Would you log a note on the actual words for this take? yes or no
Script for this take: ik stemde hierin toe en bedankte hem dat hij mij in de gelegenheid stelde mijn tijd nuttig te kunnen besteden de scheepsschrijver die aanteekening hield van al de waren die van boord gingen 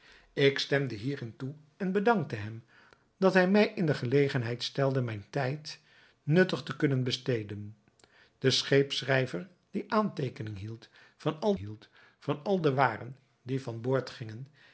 yes